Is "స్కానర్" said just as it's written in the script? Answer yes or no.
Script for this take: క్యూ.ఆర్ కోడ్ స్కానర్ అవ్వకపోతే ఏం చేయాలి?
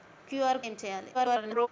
no